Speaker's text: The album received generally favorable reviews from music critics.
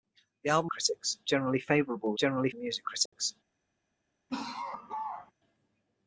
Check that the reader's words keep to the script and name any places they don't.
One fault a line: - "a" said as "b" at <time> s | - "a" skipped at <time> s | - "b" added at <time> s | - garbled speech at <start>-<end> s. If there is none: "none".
- "received" said as "critics" at 0.7 s
- "reviews" said as "generally" at 2.2 s